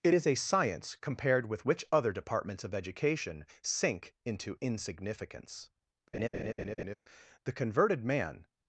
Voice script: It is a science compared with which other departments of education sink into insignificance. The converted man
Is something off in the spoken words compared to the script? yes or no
no